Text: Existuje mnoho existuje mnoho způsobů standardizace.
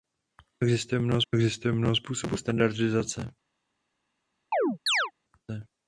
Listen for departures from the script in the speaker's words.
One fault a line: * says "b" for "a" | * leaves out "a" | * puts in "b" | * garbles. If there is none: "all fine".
all fine